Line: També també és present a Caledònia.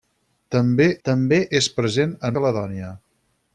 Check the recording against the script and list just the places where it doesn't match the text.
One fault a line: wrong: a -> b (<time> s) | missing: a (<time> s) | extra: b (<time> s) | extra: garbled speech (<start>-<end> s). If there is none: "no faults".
no faults